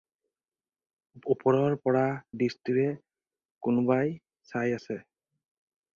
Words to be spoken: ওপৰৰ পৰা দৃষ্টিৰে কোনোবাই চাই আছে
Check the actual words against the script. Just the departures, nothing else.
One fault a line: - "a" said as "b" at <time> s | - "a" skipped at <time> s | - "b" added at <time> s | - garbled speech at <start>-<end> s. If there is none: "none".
none